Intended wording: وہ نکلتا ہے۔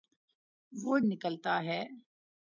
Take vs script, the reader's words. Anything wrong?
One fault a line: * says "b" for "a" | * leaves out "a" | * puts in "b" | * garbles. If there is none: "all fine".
all fine